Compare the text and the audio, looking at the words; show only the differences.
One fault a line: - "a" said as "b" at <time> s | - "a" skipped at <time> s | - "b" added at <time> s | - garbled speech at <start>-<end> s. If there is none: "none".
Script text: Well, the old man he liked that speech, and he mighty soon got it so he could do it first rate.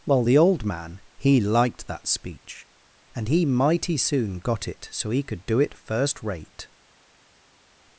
none